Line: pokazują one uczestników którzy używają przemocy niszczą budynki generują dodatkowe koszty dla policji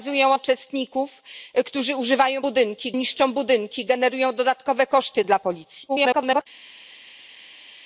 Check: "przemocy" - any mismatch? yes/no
yes